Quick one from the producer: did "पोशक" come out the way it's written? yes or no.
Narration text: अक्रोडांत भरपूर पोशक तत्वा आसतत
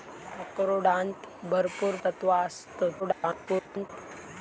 no